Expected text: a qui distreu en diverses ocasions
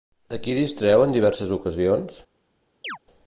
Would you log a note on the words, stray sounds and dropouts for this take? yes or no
yes